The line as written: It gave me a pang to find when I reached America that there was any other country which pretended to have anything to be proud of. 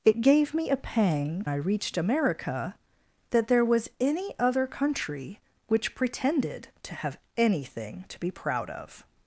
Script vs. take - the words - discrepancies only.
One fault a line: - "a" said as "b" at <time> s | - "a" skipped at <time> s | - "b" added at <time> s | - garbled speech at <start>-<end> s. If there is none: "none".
- "to find when" skipped at 1.4 s